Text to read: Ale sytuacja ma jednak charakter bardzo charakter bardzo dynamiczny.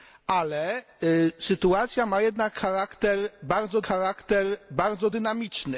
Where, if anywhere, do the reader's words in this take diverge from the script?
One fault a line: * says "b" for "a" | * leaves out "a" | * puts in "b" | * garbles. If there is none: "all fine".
all fine